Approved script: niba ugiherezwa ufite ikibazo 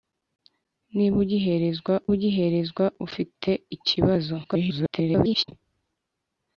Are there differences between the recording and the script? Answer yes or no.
yes